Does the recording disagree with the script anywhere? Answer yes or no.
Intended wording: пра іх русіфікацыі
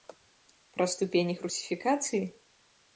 yes